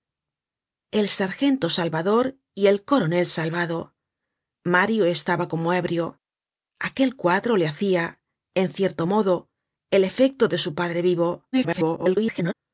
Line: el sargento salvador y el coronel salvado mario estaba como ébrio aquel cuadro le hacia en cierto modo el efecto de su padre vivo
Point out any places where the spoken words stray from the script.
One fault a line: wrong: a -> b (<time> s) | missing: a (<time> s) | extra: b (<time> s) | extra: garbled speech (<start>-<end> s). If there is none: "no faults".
extra: garbled speech (11.5-12.5 s)